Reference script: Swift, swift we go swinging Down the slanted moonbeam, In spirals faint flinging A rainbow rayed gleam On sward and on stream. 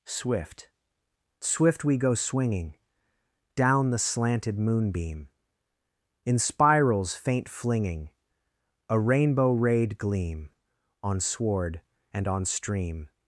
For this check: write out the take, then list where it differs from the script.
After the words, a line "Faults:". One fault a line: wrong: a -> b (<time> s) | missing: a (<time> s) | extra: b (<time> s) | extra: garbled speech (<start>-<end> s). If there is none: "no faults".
Swift, swift we go swinging Down the slanted moonbeam, In spirals faint flinging A rainbow rayed gleam On sward and on stream.
Faults:
no faults